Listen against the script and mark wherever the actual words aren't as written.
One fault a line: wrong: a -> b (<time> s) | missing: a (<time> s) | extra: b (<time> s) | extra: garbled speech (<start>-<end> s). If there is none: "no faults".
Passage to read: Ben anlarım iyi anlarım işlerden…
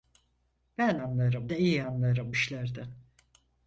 no faults